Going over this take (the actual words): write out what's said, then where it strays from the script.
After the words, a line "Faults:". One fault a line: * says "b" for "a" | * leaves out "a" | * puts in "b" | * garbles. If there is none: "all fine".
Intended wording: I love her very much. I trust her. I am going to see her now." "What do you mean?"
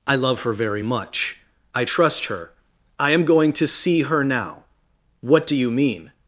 I love her very much. I trust her. I am going to see her now." "What do you mean?"
Faults:
all fine